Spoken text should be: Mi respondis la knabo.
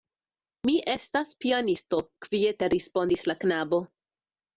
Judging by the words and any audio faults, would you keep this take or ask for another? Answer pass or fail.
fail